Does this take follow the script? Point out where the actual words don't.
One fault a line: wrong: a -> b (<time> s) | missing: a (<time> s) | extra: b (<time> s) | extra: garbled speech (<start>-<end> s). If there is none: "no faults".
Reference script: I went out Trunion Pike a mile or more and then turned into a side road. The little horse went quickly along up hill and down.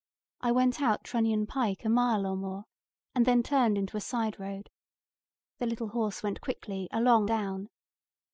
missing: up hill and (7.3 s)